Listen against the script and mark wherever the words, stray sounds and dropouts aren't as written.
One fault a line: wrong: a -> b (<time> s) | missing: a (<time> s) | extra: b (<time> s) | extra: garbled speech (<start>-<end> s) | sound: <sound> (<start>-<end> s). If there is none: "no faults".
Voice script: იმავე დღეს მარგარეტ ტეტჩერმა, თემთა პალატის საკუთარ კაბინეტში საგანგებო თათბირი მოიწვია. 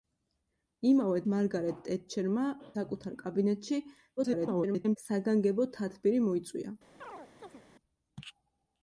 missing: დღეს (1.2 s)
missing: თემთა პალატის (2.4 s)
extra: garbled speech (4.2-5.0 s)
sound: chirp (7.0-7.6 s)